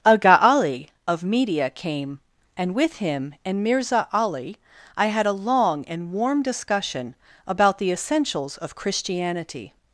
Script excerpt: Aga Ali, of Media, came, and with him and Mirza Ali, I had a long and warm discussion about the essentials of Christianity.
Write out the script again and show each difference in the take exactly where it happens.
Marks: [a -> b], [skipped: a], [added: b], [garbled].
Aga Ali, of Media, came, and with him and Mirza Ali, I had a long and warm discussion about the essentials of Christianity.